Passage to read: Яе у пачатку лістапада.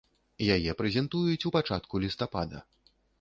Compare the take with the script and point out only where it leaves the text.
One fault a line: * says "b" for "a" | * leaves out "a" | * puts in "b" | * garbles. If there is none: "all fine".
* puts in "прэзентуюць"